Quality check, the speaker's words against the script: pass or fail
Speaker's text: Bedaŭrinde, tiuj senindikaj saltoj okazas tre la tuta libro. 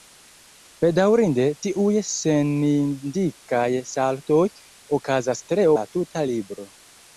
pass